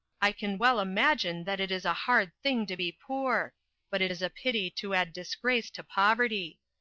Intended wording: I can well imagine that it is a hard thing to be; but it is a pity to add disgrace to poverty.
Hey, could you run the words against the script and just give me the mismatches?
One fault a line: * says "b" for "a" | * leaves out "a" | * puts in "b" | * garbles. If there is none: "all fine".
* puts in "poor"